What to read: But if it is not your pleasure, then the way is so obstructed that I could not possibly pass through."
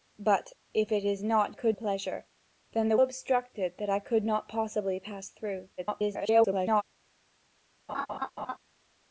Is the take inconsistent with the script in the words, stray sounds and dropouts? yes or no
yes